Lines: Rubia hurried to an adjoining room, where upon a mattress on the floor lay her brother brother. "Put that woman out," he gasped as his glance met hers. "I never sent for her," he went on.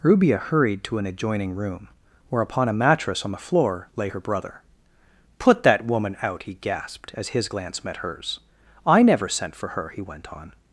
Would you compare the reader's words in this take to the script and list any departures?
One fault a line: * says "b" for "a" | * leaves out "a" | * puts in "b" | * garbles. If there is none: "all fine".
* leaves out "brother"